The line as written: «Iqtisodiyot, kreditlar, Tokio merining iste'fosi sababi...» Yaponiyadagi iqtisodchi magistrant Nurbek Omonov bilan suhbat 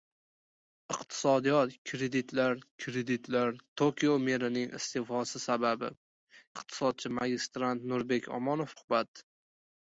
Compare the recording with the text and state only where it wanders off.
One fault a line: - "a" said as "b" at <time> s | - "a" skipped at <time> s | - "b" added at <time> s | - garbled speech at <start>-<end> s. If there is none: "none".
- "kreditlar" added at 2.8 s
- "Yaponiyadagi" skipped at 5.9 s
- "bilan" skipped at 8.8 s